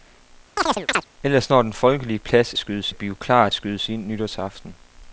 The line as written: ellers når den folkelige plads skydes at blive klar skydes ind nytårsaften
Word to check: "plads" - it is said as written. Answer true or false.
true